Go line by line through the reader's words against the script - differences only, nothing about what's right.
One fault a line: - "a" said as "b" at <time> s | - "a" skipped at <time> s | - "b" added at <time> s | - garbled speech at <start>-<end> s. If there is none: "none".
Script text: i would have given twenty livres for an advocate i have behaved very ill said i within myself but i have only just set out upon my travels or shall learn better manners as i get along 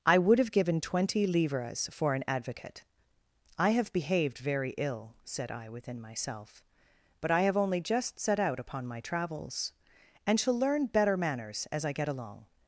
- "or" said as "and" at 10.2 s